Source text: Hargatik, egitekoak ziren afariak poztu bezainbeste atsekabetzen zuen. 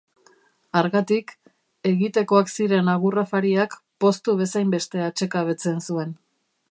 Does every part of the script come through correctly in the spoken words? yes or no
no